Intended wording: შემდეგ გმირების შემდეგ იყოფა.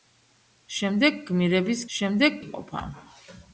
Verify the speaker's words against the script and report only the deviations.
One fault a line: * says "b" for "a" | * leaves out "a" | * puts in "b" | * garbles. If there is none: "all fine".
all fine